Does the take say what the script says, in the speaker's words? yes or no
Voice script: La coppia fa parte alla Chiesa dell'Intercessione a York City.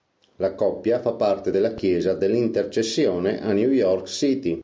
no